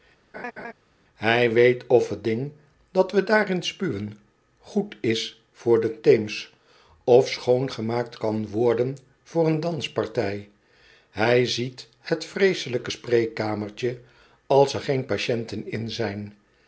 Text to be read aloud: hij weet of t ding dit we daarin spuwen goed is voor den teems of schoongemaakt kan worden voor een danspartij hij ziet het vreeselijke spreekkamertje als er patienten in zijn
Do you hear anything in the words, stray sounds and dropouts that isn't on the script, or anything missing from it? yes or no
yes